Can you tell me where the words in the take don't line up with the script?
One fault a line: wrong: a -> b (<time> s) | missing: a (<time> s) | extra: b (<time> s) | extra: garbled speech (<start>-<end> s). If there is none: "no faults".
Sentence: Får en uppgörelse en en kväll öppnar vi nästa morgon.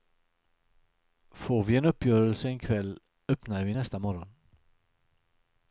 extra: vi (1.6 s)
missing: en (2.6 s)